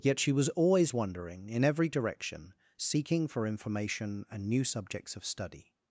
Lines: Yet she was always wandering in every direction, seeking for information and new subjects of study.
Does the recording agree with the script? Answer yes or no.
yes